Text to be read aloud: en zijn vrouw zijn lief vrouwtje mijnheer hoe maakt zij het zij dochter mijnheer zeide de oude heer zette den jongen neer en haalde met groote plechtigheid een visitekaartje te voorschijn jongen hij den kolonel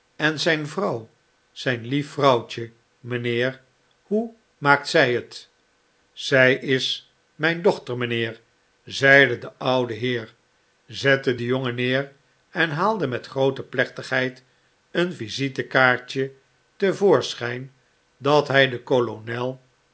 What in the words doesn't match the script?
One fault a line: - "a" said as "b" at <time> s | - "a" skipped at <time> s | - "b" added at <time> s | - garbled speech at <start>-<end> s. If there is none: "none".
- "is mijn" added at 6.5 s
- "jongen" said as "dat" at 18.2 s